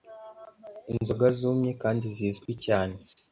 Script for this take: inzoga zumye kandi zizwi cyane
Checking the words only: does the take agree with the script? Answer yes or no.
yes